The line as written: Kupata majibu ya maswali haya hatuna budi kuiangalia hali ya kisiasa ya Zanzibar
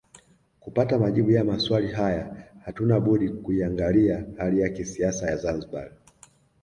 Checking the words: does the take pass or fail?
pass